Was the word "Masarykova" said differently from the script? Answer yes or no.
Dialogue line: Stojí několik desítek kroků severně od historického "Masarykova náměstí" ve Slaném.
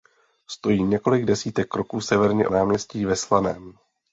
yes